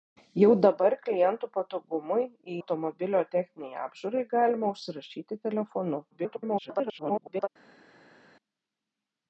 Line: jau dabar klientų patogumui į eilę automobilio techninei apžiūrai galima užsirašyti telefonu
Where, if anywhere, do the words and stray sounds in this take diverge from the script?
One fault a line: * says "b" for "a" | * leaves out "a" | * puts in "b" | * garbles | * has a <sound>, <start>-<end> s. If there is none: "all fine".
* leaves out "eilę"
* garbles